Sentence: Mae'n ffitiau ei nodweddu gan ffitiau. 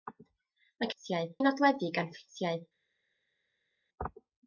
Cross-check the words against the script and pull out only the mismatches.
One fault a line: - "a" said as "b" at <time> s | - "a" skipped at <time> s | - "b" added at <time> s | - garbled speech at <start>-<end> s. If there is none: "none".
none